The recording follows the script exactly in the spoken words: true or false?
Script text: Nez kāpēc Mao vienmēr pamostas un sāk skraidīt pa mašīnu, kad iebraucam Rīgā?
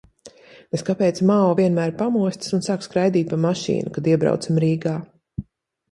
true